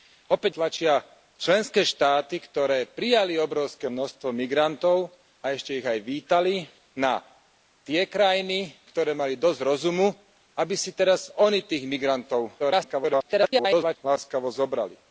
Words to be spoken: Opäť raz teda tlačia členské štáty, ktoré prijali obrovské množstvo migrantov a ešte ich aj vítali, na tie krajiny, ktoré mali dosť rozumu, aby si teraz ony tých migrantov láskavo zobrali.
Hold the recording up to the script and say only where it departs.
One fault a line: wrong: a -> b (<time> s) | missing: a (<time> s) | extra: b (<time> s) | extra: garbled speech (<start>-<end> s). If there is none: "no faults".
missing: raz teda (0.5 s)
extra: garbled speech (12.6-14.0 s)